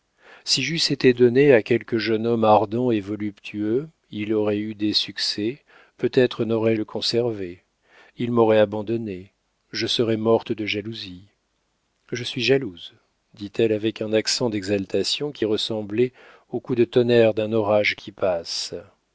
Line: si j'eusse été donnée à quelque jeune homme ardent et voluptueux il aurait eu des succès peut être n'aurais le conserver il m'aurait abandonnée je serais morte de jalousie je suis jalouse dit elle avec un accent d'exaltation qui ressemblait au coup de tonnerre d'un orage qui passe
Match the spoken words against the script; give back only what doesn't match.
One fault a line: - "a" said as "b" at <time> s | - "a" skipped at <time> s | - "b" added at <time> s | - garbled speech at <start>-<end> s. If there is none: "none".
none